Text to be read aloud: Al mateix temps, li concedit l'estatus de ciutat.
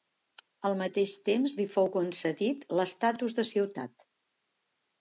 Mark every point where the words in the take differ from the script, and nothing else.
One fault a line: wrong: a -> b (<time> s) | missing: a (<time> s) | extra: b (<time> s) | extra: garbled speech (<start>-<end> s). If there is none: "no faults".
extra: fou (1.8 s)